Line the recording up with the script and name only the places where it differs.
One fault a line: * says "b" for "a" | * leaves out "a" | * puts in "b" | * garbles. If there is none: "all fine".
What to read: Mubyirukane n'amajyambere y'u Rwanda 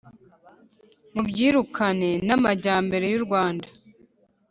all fine